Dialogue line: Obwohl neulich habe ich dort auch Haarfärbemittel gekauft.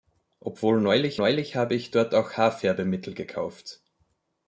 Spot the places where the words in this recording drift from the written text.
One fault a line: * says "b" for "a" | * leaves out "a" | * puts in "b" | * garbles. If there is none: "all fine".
* puts in "neulich"